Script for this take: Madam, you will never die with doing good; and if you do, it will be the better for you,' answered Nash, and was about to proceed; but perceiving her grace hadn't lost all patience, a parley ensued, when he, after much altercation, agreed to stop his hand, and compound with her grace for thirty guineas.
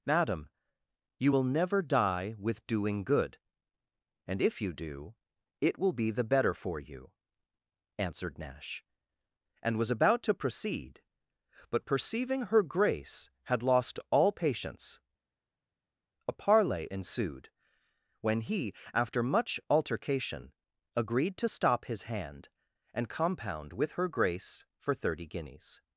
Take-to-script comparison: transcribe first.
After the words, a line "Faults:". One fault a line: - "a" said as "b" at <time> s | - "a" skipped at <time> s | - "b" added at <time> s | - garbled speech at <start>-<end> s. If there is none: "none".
Madam, you will never die with doing good; and if you do, it will be the better for you,' answered Nash, and was about to proceed; but perceiving her grace had lost all patience, a parley ensued, when he, after much altercation, agreed to stop his hand, and compound with her grace for thirty guineas.
Faults:
- "hadn't" said as "had" at 13.4 s